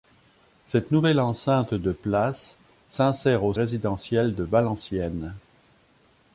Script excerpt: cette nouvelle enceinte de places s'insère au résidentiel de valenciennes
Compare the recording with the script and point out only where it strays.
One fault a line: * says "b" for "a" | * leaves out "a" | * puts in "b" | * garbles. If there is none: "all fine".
all fine